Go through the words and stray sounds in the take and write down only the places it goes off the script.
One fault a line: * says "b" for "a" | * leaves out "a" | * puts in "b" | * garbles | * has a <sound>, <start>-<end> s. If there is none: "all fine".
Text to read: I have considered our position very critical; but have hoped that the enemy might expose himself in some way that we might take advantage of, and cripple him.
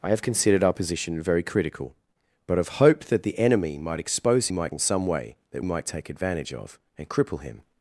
* says "might" for "himself"
* leaves out "we"